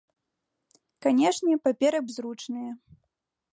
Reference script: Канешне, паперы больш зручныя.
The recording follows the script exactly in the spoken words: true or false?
false